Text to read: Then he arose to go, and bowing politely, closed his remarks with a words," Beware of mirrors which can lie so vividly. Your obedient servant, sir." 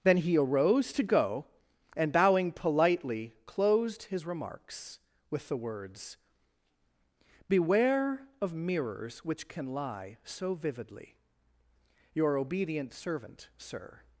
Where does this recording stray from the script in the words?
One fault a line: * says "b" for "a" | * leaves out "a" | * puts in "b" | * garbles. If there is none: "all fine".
* says "the" for "a"